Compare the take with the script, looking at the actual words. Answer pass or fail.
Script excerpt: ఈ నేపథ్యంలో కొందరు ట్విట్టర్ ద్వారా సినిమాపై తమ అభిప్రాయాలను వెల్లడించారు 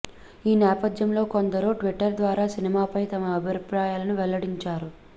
pass